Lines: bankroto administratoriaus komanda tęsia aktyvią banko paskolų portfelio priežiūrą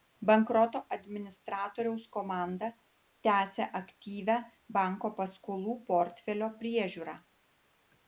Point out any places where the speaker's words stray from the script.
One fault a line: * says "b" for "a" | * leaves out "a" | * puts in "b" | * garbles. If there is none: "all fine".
all fine